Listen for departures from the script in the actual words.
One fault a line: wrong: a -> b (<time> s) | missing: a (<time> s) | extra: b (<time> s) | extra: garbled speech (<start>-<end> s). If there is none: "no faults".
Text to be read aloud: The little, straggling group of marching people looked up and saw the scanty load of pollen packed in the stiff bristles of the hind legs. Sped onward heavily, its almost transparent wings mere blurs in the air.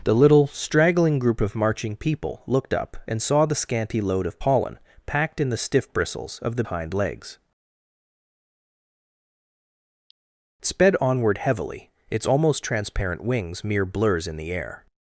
no faults